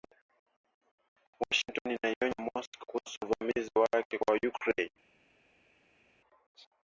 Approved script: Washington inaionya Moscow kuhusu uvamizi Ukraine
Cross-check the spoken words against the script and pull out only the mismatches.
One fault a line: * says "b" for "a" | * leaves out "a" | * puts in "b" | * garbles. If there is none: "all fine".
* puts in "wake kwa"